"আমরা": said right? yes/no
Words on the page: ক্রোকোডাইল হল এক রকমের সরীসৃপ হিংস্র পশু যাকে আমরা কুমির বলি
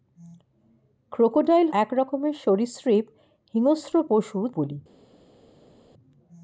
no